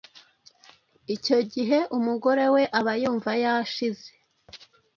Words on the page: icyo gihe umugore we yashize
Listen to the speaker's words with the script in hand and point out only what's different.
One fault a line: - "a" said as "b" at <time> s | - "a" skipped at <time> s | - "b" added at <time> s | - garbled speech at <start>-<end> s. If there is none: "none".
- "aba yumva" added at 2.8 s